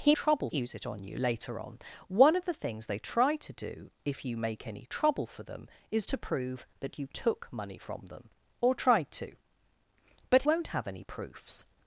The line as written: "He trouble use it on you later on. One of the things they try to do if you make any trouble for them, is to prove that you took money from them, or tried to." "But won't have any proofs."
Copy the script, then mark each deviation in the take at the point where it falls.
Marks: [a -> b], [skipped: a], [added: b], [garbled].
"He trouble use it on you later on. One of the things they try to do if you make any trouble for them, is to prove that you took money from them, or tried to." "But won't have any proofs."